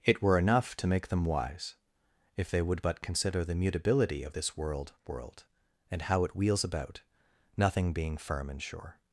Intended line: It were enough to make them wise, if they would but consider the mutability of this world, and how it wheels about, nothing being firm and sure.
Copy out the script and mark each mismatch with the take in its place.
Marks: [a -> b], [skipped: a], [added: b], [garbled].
It were enough to make them wise, if they would but consider the mutability of this world, [added: world] and how it wheels about, nothing being firm and sure.